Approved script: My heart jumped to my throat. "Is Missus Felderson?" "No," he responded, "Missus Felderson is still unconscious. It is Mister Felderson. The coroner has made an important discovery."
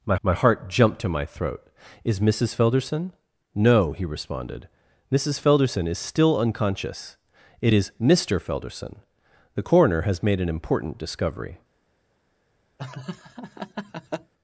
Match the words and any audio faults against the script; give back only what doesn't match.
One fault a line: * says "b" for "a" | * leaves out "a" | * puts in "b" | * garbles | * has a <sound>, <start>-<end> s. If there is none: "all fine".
* puts in "my"
* has a laugh, 12.8-14.3 s